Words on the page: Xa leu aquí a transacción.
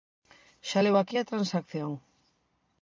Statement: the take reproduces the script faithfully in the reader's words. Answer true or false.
true